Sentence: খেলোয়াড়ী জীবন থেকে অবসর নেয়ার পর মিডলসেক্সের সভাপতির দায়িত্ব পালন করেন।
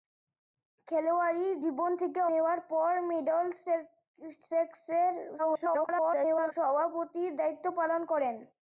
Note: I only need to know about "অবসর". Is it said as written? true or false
false